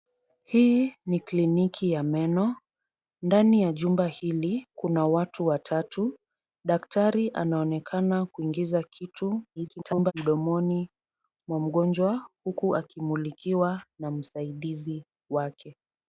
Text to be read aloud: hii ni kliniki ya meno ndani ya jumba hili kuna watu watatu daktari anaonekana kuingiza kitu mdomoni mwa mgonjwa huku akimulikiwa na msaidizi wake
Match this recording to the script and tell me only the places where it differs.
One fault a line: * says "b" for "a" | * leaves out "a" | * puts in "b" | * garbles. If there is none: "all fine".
* garbles